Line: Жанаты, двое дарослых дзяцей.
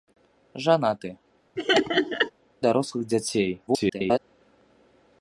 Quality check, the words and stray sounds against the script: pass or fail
fail